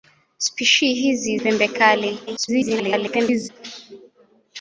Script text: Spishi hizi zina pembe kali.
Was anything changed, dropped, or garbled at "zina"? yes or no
yes